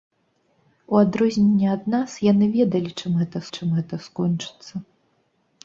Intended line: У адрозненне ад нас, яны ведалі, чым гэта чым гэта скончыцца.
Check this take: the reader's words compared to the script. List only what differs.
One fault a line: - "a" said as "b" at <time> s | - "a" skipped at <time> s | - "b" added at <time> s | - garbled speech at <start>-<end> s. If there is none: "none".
none